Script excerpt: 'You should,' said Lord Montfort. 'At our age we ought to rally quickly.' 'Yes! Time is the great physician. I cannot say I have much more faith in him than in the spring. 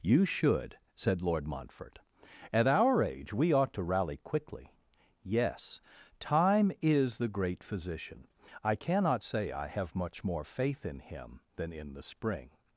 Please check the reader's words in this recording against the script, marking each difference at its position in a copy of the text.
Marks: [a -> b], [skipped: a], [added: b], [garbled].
'You should,' said Lord Montfort. 'At our age we ought to rally quickly.' 'Yes! Time is the great physician. I cannot say I have much more faith in him than in the spring.